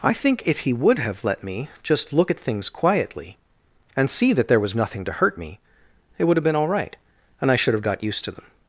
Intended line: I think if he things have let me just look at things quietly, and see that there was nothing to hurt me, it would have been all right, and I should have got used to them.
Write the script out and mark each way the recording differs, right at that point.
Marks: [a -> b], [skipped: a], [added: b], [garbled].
I think if he [things -> would] have let me just look at things quietly, and see that there was nothing to hurt me, it would have been all right, and I should have got used to them.